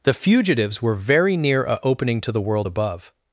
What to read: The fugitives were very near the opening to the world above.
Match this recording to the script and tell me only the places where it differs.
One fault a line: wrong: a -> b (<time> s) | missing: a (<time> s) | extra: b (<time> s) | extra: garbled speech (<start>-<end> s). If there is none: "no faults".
wrong: the -> a (1.6 s)